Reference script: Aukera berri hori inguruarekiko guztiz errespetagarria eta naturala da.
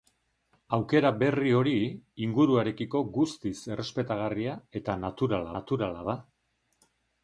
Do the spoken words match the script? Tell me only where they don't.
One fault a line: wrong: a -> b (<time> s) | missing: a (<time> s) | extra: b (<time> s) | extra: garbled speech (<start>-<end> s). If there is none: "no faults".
extra: naturala (5.5 s)